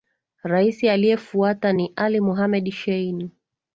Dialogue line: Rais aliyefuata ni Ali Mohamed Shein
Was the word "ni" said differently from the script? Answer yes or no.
no